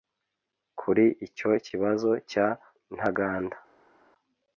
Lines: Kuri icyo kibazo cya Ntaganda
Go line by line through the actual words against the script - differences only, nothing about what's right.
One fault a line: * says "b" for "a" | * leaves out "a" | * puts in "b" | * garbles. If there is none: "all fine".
all fine